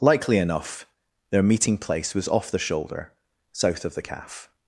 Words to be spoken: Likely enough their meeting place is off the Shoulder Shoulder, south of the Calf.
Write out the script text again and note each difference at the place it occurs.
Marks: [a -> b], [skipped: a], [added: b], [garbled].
Likely enough their meeting place [is -> was] off the Shoulder [skipped: Shoulder,] south of the Calf.